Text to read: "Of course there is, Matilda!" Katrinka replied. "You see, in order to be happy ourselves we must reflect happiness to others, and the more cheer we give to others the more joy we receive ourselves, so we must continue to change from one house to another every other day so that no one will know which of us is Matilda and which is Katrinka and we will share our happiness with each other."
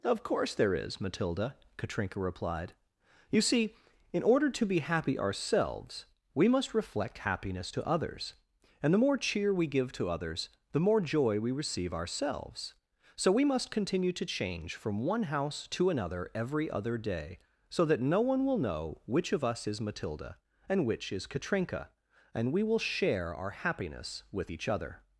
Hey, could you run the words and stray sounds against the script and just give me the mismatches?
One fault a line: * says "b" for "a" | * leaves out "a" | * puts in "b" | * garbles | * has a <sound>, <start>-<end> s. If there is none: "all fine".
all fine